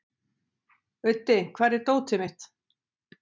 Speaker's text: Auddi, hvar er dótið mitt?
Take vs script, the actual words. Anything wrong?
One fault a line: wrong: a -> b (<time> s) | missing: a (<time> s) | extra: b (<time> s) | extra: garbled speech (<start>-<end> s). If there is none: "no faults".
no faults